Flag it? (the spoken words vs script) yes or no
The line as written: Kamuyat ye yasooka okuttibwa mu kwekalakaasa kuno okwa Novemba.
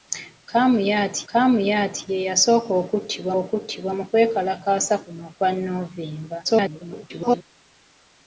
yes